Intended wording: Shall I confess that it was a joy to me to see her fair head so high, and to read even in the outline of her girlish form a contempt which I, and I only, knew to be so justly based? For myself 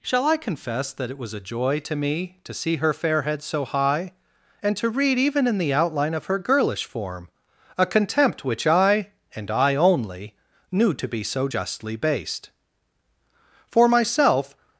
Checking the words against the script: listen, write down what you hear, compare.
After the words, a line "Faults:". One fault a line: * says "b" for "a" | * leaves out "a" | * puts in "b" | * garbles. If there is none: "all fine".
Shall I confess that it was a joy to me to see her fair head so high, and to read even in the outline of her girlish form a contempt which I, and I only, knew to be so justly based? For myself
Faults:
all fine